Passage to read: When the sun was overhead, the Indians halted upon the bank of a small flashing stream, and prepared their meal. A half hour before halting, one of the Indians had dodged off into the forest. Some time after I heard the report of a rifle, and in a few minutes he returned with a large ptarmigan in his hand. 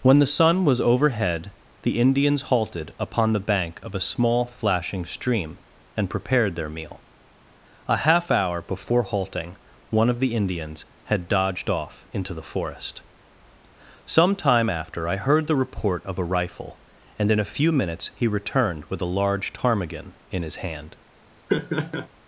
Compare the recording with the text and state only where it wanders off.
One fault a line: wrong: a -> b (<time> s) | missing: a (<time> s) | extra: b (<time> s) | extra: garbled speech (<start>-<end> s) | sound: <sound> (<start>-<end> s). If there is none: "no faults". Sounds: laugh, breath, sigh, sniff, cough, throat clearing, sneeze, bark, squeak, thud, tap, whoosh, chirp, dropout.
sound: laugh (21.5-22.1 s)